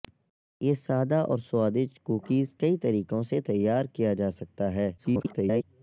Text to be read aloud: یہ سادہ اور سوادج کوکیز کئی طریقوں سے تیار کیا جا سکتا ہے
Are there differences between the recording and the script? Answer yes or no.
yes